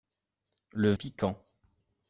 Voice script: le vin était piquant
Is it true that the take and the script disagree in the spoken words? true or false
true